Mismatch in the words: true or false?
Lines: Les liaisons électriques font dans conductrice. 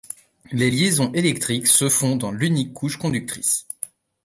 true